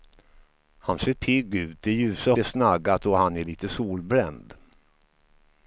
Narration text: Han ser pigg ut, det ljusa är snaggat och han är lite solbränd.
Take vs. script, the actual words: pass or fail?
pass